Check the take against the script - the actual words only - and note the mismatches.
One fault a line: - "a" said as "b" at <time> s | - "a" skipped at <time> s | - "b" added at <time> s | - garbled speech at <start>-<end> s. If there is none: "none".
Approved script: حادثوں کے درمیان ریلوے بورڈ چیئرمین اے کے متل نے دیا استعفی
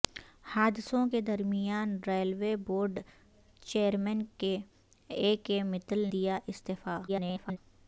- "نے" skipped at 6.1 s
- garbled speech at 7.1-7.6 s